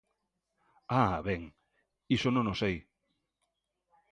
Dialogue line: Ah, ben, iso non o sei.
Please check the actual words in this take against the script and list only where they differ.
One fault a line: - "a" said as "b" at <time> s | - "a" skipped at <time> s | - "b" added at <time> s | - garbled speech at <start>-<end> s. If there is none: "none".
none